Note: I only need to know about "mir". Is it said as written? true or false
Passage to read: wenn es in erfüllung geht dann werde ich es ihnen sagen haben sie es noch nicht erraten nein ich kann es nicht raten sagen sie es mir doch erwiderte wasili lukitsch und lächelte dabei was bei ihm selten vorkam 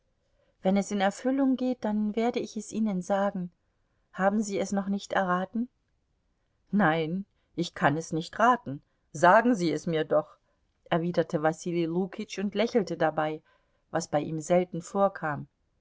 true